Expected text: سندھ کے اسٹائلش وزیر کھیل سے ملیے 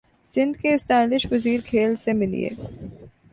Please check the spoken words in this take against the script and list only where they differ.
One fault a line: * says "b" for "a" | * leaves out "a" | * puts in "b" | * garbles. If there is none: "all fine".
all fine